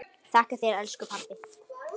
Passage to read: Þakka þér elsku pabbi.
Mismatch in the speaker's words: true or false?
false